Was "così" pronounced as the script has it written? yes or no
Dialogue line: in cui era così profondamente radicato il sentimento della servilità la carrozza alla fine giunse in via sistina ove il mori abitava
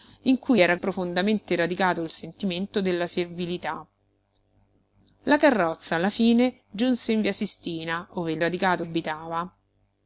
no